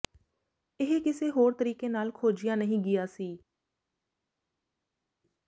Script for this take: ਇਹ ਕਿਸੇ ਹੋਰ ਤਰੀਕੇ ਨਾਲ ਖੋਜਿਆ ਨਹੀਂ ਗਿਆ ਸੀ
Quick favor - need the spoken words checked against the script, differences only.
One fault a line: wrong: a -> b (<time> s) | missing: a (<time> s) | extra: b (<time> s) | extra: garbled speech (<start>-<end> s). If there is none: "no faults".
no faults